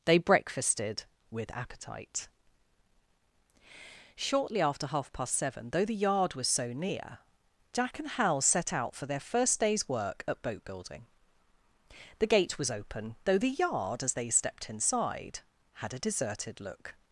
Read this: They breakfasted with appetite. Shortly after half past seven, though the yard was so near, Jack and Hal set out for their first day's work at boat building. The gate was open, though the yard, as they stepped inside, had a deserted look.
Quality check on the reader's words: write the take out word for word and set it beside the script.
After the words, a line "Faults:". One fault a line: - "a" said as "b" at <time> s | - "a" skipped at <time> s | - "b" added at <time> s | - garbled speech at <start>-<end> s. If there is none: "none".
They breakfasted with appetite. Shortly after half past seven, though the yard was so near, Jack and Hal set out for their first day's work at boat building. The gate was open, though the yard, as they stepped inside, had a deserted look.
Faults:
none